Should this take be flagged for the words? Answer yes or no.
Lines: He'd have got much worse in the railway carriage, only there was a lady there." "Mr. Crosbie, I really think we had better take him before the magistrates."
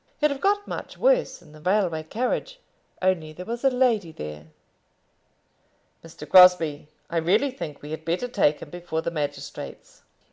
no